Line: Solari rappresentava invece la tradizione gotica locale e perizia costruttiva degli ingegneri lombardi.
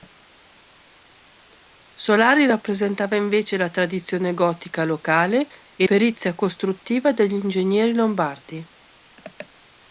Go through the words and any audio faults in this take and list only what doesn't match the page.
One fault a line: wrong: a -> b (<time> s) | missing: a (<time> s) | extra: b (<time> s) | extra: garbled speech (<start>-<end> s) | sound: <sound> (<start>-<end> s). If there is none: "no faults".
no faults